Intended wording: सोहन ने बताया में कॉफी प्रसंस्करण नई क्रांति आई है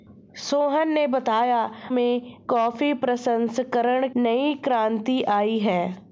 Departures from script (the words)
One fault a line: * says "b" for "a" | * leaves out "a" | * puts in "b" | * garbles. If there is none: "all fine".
all fine